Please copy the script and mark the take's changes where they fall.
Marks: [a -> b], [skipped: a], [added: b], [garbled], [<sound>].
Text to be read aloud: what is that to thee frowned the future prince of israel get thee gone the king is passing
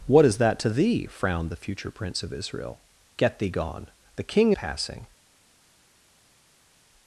what is that to thee frowned the future prince of israel get thee gone the king [skipped: is] passing